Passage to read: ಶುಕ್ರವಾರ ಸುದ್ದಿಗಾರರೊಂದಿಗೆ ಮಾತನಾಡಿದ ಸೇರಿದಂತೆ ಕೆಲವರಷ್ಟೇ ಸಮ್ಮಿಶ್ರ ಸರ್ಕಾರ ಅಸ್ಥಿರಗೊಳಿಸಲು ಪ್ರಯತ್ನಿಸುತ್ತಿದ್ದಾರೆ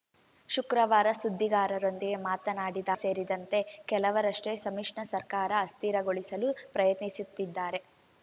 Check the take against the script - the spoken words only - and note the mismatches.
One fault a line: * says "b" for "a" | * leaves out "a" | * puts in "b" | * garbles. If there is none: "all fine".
all fine